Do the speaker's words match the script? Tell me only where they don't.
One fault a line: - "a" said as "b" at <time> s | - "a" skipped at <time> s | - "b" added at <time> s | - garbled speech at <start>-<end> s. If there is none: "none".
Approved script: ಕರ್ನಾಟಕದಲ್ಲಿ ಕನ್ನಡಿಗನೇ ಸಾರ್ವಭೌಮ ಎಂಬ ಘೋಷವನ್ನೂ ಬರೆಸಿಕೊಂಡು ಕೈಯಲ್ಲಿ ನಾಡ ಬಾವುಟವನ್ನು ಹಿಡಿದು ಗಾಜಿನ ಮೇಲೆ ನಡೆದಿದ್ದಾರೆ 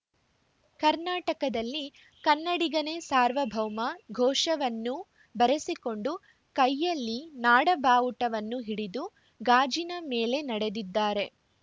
- "ಎಂಬ" skipped at 3.8 s